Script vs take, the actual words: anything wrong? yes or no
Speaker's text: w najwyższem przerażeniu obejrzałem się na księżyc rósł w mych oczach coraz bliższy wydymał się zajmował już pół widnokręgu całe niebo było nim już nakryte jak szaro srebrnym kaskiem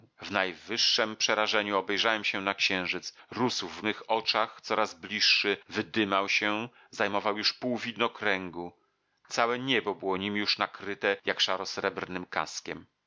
no